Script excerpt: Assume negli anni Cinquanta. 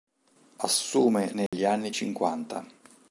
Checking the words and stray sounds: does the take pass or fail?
fail